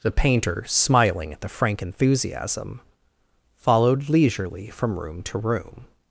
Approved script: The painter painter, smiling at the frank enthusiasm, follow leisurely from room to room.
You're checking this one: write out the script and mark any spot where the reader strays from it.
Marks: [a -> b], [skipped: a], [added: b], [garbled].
The painter [skipped: painter,] smiling at the frank enthusiasm, [follow -> followed] leisurely from room to room.